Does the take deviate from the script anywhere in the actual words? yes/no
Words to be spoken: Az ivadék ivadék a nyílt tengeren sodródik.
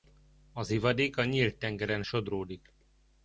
yes